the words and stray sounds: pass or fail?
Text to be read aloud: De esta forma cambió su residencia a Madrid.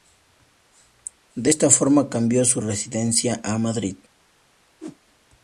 fail